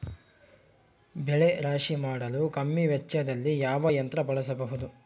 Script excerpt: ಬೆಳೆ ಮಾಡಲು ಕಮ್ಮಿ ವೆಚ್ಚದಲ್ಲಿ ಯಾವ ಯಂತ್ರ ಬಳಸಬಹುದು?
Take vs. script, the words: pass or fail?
fail